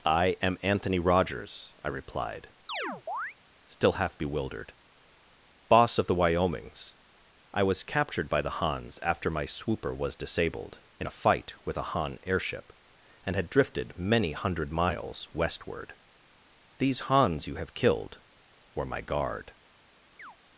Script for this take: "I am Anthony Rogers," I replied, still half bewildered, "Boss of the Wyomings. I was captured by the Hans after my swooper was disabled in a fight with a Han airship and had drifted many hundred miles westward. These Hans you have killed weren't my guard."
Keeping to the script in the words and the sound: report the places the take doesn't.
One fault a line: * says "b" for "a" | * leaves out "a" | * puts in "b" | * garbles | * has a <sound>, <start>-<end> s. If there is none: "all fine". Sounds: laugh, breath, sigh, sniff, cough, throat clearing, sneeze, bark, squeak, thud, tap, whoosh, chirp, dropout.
* has a chirp, 2.7-3.4 s
* says "were" for "weren't"
* has a chirp, 20.2-20.4 s